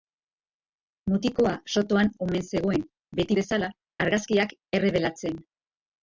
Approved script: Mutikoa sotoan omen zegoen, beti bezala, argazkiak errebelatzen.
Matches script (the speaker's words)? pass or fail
pass